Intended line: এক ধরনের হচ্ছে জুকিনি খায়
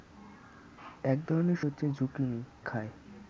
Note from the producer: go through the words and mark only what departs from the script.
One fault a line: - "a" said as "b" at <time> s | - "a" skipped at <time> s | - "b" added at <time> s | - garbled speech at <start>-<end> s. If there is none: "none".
none